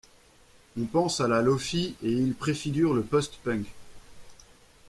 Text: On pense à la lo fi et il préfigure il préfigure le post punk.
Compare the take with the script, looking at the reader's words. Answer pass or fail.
fail